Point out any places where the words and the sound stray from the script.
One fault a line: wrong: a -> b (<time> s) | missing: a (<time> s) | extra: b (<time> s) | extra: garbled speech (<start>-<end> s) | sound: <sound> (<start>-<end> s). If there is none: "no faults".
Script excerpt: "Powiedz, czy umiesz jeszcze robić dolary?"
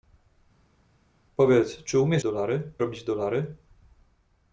wrong: jeszcze -> dolary (2.2 s)